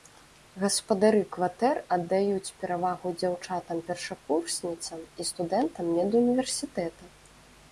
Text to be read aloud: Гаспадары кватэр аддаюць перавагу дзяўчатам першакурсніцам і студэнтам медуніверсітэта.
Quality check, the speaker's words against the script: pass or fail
pass